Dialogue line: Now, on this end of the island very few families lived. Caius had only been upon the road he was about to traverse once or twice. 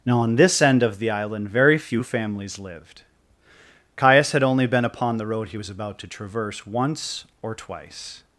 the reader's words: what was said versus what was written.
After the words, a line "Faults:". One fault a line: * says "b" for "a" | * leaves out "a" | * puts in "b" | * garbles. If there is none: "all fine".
Now, on this end of the island very few families lived. Caius had only been upon the road he was about to traverse once or twice.
Faults:
all fine